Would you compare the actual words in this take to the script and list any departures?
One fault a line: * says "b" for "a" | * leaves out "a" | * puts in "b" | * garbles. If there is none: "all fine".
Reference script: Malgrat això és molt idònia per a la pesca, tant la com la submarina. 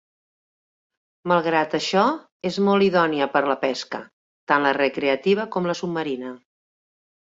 * puts in "recreativa"